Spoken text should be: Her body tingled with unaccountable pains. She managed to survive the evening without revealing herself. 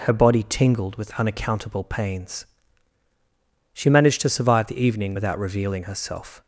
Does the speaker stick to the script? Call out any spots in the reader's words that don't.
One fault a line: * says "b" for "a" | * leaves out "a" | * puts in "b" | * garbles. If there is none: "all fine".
all fine